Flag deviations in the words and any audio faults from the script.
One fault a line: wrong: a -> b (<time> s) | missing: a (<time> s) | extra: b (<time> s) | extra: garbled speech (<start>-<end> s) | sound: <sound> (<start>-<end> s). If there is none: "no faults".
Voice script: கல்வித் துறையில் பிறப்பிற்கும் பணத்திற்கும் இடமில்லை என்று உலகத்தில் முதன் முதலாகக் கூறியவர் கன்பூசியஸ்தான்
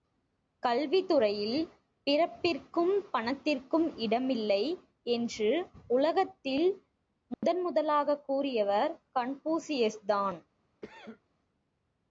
sound: dropout (7.3-7.4 s)
sound: cough (10.8-11.2 s)